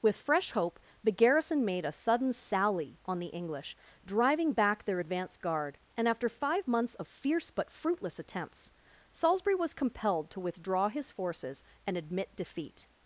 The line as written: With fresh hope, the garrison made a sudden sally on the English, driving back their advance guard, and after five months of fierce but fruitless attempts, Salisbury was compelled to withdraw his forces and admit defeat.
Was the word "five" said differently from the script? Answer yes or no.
no